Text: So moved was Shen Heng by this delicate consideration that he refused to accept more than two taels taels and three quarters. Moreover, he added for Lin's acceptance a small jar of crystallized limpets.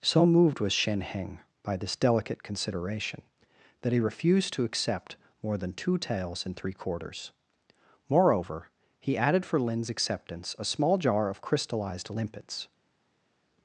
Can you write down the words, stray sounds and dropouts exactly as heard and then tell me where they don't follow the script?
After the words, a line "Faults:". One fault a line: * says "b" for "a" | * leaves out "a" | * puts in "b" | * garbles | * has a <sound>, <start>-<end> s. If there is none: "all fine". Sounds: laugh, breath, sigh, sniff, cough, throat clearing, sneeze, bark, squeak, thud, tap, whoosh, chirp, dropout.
So moved was Shen Heng by this delicate consideration that he refused to accept more than two taels and three quarters. Moreover, he added for Lin's acceptance a small jar of crystallized limpets.
Faults:
* leaves out "taels"